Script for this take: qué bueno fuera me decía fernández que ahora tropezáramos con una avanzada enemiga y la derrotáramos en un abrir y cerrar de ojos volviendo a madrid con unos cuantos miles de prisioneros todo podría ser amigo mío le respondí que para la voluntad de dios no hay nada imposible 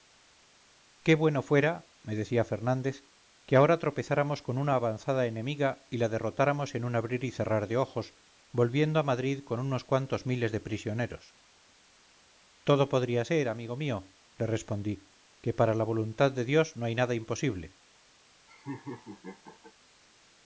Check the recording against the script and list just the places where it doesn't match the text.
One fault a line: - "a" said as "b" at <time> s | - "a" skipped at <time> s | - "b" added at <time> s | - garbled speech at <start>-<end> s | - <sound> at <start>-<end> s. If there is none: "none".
- laugh at 18.5-19.7 s